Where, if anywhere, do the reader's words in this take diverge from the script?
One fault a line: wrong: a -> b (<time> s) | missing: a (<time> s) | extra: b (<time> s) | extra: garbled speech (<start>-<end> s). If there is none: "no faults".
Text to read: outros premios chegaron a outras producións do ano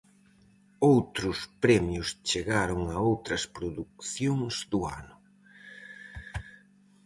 no faults